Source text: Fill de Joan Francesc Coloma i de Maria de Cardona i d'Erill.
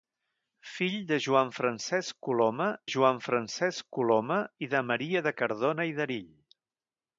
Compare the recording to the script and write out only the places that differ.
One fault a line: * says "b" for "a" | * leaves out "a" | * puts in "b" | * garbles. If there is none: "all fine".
* puts in "Joan Francesc Coloma"